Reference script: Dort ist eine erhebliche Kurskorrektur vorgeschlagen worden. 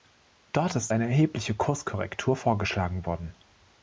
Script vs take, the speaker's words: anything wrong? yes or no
no